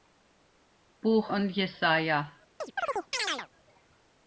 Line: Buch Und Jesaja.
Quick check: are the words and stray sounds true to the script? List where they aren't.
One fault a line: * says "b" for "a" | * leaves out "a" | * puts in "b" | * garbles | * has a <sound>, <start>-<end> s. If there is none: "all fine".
* has a chirp, 2.6-3.5 s